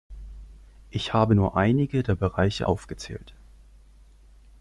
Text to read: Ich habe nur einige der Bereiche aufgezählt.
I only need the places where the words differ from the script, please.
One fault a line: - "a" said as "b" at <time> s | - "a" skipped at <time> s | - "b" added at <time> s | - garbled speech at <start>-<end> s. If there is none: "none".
none